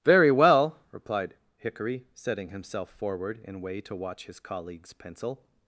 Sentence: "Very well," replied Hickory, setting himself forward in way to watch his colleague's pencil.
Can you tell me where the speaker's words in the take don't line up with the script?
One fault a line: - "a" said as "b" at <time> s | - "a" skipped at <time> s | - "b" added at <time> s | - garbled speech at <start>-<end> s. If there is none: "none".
none